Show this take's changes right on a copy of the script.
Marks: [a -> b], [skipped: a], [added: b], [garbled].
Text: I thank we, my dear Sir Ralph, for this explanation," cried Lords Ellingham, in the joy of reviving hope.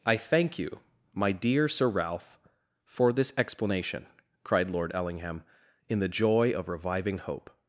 I thank [we, -> you] my dear Sir Ralph, for this explanation," cried [Lords -> Lord] Ellingham, in the joy of reviving hope.